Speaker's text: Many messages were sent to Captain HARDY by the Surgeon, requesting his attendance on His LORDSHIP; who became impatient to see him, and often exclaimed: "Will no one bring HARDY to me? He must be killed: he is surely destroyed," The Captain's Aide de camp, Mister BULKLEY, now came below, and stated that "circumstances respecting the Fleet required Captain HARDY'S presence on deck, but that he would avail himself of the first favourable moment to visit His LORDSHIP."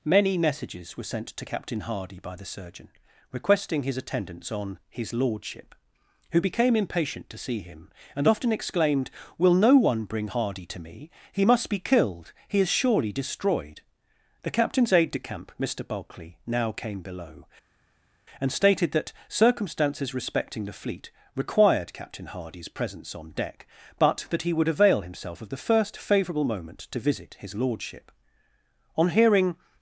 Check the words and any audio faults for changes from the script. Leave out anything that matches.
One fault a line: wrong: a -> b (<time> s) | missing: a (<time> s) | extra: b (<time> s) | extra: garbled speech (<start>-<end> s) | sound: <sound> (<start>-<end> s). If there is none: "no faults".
extra: On hearing (29.0 s)